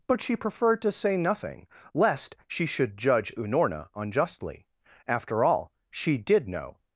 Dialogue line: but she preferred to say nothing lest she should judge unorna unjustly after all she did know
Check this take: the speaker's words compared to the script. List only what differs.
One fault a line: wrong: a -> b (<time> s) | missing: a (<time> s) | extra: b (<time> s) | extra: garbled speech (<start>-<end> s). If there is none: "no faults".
no faults